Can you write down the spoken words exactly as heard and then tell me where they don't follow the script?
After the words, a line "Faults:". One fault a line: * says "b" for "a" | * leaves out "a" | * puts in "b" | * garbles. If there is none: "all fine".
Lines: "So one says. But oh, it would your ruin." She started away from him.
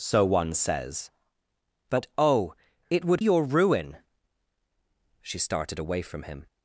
"So one says. But oh, it would your ruin." She started away from him.
Faults:
all fine